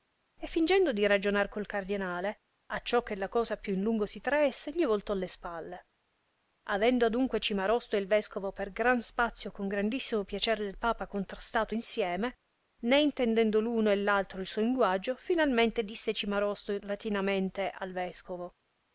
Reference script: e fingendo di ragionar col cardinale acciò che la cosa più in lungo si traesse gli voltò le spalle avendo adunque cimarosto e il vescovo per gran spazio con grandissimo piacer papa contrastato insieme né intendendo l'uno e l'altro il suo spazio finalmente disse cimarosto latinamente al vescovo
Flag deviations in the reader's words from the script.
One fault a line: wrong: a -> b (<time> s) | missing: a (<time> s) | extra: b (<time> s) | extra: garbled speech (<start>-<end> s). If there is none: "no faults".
extra: del (10.6 s)
wrong: spazio -> linguaggio (14.6 s)